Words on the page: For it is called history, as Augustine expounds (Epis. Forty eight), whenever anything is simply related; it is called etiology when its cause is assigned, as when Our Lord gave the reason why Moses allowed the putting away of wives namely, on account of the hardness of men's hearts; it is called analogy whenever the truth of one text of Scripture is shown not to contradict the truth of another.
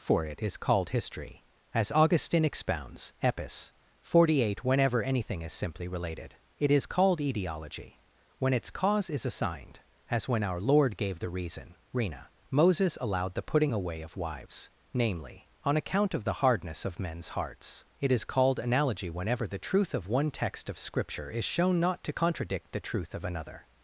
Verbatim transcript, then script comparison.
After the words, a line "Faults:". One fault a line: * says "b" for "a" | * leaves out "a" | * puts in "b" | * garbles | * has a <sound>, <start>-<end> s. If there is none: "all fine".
For it is called history, as Augustine expounds (Epis. Forty eight), whenever anything is simply related; it is called etiology when its cause is assigned, as when Our Lord gave the reason rena Moses allowed the putting away of wives namely, on account of the hardness of men's hearts; it is called analogy whenever the truth of one text of Scripture is shown not to contradict the truth of another.
Faults:
* says "rena" for "why"